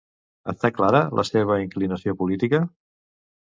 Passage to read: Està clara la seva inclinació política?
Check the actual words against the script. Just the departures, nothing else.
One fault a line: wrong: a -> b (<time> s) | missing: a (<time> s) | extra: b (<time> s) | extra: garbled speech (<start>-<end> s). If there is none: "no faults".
no faults